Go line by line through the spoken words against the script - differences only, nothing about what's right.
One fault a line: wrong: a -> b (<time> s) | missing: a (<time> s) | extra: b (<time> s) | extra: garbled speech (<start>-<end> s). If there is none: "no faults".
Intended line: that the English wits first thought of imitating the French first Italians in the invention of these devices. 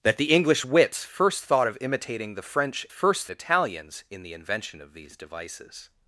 no faults